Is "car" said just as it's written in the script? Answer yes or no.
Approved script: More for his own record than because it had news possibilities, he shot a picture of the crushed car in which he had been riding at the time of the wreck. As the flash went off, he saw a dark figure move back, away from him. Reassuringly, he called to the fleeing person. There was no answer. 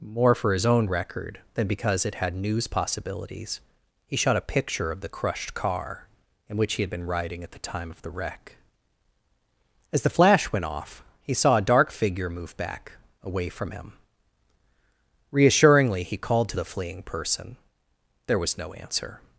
yes